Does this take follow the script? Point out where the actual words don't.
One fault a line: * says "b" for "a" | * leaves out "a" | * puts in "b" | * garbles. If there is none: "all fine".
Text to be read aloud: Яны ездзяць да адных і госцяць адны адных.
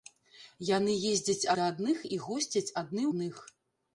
all fine